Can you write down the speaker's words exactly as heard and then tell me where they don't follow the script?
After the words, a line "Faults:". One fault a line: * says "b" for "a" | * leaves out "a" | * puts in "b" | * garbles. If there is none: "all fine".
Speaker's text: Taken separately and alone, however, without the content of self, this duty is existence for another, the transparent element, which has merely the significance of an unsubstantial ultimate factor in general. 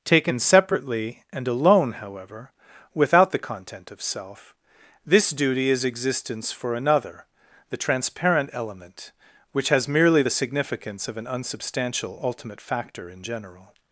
Taken separately and alone, however, without the content of self, this duty is existence for another, the transparent element, which has merely the significance of an unsubstantial ultimate factor in general.
Faults:
all fine